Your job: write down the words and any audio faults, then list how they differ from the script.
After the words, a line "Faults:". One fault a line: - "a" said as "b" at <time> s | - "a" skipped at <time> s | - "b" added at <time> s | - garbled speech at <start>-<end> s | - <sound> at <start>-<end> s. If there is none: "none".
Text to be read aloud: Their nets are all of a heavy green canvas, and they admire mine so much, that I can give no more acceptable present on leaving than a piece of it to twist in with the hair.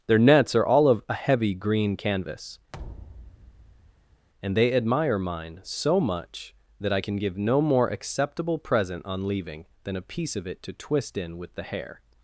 Their nets are all of a heavy green canvas, and they admire mine so much, that I can give no more acceptable present on leaving than a piece of it to twist in with the hair.
Faults:
- thud at 2.7-4.3 s